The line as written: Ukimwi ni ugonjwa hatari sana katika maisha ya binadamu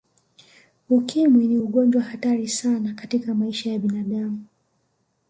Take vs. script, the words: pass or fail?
pass